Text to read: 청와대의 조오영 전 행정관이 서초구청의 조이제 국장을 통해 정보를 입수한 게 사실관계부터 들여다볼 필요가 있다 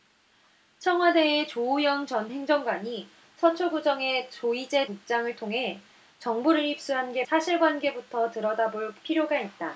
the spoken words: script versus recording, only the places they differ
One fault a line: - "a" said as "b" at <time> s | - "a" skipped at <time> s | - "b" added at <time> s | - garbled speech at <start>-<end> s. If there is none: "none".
none